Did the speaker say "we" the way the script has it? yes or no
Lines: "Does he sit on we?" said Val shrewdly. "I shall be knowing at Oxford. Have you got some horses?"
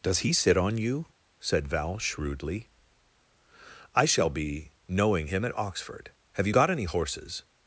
no